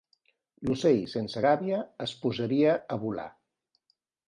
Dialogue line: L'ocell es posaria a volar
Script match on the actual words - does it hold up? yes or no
no